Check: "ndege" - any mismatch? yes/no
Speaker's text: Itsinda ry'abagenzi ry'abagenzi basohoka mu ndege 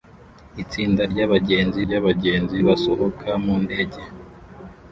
no